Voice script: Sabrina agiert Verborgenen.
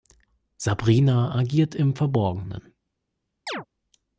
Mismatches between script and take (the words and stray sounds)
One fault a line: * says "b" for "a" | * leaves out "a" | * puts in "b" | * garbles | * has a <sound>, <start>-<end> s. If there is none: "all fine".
* puts in "im"
* has a chirp, 3.5-3.7 s